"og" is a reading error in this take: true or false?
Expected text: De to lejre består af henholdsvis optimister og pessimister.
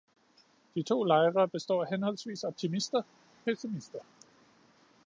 true